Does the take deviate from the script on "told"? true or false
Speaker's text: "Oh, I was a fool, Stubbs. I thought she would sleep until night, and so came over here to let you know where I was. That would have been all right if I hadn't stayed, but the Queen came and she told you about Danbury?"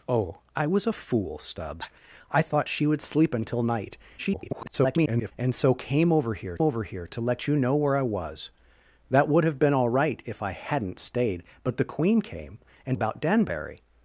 true